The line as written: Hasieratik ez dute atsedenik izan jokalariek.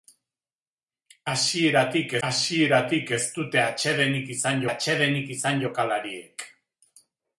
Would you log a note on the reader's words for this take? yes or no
yes